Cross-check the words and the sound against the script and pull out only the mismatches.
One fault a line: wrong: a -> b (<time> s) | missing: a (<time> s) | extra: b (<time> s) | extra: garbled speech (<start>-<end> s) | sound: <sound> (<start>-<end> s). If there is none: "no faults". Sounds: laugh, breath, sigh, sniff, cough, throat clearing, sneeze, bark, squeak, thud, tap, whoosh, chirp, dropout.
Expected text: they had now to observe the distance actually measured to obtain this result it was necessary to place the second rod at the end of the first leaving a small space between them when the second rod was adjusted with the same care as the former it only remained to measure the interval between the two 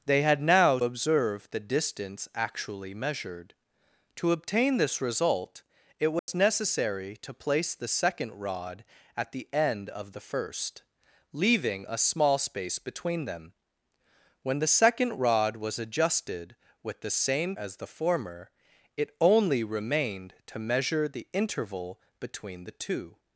missing: to (0.8 s)
sound: dropout (6.2-6.3 s)
missing: care (17.6 s)